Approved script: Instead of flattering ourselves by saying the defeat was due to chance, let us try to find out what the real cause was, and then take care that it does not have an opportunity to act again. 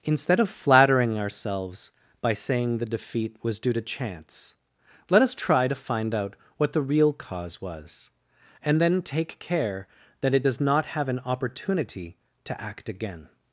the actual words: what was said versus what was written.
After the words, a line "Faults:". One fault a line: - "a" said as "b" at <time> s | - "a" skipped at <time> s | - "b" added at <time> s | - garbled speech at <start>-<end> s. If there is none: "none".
Instead of flattering ourselves by saying the defeat was due to chance, let us try to find out what the real cause was, and then take care that it does not have an opportunity to act again.
Faults:
none